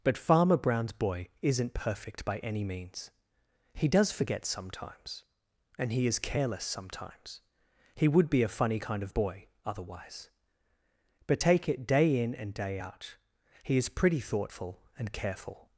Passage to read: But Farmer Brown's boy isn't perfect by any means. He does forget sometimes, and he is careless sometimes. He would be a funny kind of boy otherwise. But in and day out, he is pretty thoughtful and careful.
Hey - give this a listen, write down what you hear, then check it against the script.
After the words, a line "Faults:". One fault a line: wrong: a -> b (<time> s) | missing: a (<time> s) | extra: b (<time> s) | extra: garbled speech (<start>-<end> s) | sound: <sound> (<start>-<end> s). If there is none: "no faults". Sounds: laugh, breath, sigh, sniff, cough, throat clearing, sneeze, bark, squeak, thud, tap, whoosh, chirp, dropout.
But Farmer Brown's boy isn't perfect by any means. He does forget sometimes, and he is careless sometimes. He would be a funny kind of boy otherwise. But take it day in and day out, he is pretty thoughtful and careful.
Faults:
extra: take it day (11.4 s)